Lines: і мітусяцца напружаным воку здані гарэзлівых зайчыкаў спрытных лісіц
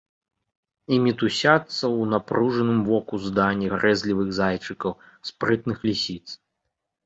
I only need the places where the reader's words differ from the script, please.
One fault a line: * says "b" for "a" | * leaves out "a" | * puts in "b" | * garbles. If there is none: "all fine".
* puts in "ў"